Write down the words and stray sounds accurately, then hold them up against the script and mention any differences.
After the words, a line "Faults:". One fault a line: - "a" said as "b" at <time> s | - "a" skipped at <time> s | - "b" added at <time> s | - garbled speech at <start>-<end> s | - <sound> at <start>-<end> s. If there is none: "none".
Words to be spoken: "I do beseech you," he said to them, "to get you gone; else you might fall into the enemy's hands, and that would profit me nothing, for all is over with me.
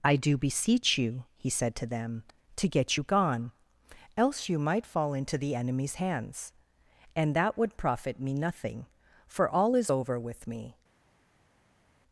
"I do beseech you," he said to them, "to get you gone; else you might fall into the enemy's hands, and that would profit me nothing, for all is over with me.
Faults:
none